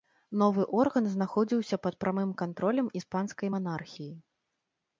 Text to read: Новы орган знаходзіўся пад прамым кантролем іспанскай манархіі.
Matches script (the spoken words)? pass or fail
pass